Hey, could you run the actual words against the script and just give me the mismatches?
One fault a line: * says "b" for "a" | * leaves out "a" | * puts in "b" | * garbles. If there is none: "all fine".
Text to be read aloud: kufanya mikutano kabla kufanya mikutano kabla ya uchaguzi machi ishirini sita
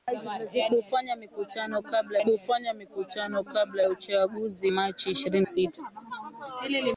all fine